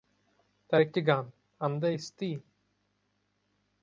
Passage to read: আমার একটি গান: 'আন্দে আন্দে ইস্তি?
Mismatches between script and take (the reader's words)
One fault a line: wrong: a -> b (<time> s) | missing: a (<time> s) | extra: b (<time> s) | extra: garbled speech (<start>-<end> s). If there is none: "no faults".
wrong: আমার -> তার (0.7 s)
missing: আন্দে (1.9 s)